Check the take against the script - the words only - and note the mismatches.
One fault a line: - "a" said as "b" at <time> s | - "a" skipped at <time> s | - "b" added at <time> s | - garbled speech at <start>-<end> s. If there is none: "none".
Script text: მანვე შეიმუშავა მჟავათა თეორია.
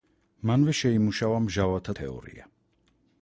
none